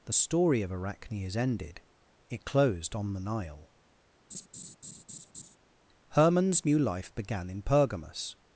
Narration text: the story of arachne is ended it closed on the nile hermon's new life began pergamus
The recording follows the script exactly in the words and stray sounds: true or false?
false